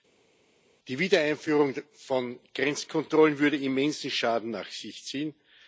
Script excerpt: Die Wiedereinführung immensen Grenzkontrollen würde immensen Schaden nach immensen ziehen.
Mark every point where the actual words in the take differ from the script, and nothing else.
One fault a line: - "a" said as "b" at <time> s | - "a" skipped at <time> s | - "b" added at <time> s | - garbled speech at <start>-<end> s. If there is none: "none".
- "immensen" said as "von" at 2.0 s
- "immensen" said as "sich" at 4.7 s